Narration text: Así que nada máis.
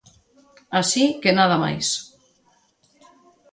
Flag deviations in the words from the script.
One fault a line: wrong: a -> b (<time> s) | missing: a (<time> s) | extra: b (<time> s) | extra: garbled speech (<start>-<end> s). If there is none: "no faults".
no faults